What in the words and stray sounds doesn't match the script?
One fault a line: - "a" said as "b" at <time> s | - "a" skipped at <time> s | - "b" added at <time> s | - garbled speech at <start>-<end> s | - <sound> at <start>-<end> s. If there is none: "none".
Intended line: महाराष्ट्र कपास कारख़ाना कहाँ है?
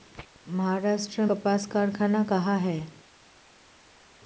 none